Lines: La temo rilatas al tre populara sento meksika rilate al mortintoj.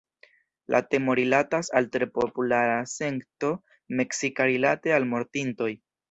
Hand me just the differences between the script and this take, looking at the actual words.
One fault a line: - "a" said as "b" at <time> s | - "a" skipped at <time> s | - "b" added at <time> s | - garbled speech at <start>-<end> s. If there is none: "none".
none